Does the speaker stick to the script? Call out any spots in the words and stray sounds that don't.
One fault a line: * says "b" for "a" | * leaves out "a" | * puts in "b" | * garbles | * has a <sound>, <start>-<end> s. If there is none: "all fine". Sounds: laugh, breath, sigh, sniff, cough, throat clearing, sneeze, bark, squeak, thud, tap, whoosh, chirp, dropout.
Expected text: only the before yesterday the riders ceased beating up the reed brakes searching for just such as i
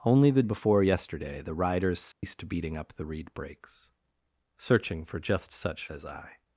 * has a dropout, 2.1-2.2 s